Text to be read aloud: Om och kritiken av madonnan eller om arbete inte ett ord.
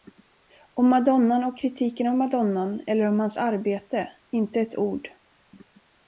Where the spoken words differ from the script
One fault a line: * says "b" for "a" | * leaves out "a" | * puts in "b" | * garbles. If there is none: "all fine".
* puts in "madonnan"
* puts in "hans"